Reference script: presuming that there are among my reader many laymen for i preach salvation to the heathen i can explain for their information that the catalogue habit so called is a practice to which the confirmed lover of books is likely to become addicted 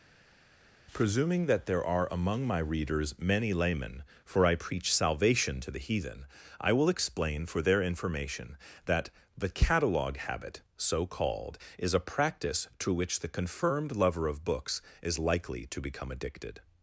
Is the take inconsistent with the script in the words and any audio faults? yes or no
yes